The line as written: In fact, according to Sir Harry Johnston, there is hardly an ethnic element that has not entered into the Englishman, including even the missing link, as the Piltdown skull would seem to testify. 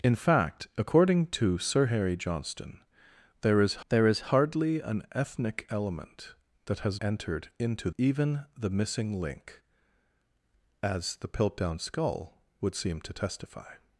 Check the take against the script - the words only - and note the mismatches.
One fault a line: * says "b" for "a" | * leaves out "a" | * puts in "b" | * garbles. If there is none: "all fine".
* puts in "there is"
* leaves out "not"
* leaves out "the Englishman including"